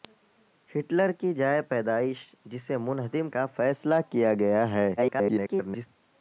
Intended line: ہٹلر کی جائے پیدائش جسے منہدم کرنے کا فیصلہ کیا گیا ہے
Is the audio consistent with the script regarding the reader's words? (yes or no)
no